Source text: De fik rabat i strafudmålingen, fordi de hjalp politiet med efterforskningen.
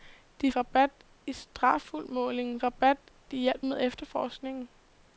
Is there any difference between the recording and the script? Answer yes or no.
yes